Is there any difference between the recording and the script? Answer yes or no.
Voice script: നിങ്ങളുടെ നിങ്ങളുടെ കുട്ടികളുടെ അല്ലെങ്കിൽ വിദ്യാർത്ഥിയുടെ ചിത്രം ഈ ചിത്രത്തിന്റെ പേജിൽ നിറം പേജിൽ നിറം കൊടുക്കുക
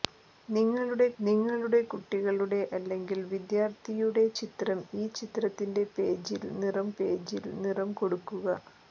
no